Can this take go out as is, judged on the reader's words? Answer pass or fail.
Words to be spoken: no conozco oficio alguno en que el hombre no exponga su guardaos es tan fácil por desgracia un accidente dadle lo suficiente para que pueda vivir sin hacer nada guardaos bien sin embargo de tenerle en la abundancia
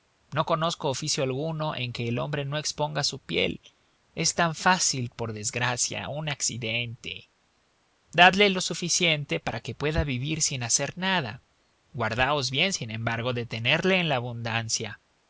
fail